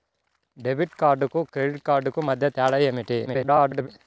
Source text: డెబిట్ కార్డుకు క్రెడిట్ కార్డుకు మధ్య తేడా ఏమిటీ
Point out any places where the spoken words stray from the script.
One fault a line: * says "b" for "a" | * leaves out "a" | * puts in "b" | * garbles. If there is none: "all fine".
* garbles